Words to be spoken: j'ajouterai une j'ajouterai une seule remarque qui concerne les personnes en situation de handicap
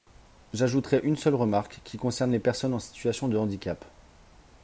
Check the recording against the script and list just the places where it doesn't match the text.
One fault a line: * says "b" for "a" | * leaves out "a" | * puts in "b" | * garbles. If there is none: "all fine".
* leaves out "j'ajouterai une"